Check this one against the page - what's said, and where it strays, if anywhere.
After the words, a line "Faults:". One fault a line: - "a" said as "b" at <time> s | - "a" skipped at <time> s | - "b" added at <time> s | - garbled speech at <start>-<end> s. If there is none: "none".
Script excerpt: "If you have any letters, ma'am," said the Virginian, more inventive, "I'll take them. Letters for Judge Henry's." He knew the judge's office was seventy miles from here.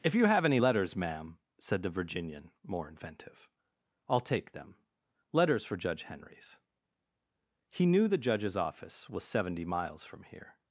"If you have any letters, ma'am," said the Virginian, more inventive, "I'll take them. Letters for Judge Henry's." He knew the judge's office was seventy miles from here.
Faults:
none